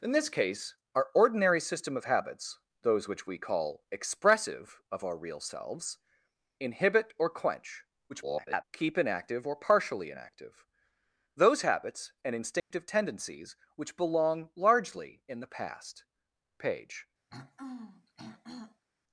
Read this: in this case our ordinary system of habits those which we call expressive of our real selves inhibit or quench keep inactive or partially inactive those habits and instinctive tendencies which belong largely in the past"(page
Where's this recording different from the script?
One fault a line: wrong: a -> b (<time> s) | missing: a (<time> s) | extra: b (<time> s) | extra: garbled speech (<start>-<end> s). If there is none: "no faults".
extra: garbled speech (8.1-8.6 s)